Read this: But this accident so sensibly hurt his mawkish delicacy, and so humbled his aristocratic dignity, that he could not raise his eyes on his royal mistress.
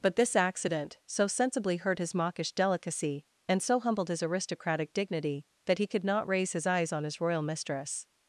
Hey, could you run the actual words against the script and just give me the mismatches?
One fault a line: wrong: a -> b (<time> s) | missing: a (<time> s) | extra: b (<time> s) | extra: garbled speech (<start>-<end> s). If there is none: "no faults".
no faults